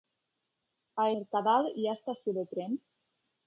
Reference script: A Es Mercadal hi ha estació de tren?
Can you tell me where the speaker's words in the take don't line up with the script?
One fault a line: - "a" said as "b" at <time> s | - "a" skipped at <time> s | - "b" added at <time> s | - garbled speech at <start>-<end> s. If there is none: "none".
- "Es" skipped at 1.1 s